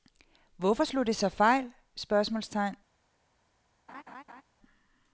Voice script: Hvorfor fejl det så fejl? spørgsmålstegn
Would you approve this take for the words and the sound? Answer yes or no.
no